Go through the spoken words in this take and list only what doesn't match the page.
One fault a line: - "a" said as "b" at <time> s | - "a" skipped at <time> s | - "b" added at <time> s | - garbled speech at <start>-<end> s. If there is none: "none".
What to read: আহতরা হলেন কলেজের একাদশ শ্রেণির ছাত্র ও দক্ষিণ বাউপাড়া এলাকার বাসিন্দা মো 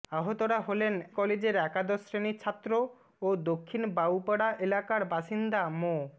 none